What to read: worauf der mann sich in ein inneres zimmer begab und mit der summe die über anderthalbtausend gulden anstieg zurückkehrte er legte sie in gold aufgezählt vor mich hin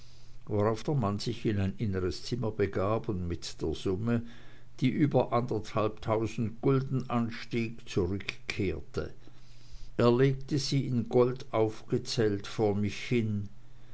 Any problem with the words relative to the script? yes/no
no